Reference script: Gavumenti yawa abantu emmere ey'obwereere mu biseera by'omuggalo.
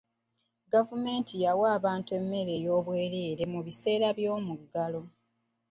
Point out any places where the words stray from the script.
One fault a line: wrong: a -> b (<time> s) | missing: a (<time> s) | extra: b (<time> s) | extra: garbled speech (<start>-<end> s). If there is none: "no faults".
no faults